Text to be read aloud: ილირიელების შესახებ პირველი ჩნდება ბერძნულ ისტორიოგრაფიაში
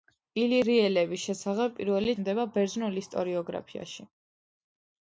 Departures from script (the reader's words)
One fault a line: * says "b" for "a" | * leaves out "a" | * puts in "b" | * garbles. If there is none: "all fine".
all fine